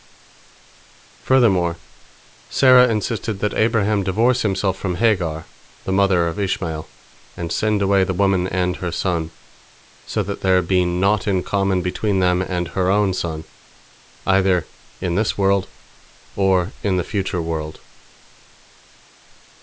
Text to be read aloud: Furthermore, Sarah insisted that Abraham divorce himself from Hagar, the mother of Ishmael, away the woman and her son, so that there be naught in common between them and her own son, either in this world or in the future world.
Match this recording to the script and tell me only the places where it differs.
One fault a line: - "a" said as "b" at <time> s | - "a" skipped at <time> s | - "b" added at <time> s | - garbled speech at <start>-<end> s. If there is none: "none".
- "and send" added at 7.4 s